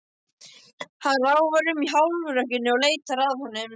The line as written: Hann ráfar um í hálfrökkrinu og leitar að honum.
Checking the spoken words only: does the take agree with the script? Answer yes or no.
yes